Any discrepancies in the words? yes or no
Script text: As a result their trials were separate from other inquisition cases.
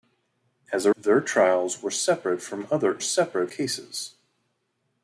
yes